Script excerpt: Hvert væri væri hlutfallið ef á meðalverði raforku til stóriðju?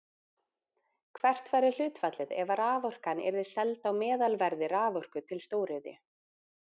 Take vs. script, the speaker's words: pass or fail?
fail